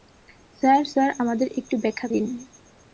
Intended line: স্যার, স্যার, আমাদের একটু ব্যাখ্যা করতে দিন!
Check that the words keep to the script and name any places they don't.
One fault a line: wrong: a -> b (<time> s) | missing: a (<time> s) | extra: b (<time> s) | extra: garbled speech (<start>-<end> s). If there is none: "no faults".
missing: করতে (2.1 s)